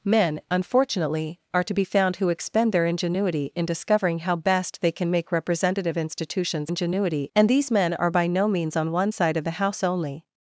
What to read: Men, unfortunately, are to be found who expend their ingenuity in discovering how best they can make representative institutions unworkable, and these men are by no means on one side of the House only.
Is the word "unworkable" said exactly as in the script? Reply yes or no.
no